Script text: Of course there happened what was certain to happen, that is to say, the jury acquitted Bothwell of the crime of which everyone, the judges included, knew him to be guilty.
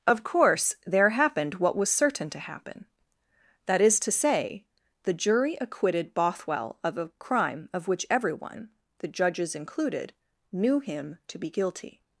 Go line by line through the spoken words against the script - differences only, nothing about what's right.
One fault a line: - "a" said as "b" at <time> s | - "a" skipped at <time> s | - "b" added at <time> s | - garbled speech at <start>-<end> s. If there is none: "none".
- "the" said as "a" at 7.0 s